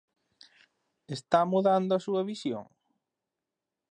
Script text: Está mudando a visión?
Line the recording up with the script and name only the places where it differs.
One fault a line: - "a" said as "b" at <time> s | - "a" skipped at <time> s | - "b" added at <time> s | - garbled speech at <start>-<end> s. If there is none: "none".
- "súa" added at 2.0 s